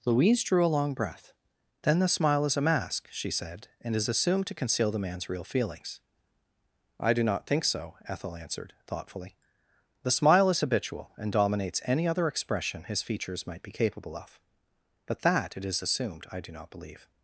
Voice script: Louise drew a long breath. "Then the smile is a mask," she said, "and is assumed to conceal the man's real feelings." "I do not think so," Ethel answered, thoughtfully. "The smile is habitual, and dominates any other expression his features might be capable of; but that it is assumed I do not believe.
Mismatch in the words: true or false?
false